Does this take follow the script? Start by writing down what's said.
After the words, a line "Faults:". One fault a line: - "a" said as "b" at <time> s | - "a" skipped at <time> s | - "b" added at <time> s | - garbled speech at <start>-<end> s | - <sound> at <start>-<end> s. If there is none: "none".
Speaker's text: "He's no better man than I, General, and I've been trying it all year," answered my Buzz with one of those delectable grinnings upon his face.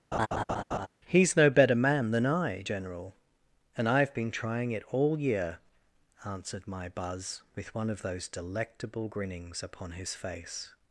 "He's no better man than I, General, and I've been trying it all year," answered my Buzz with one of those delectable grinnings upon his face.
Faults:
- laugh at 0.1-0.9 s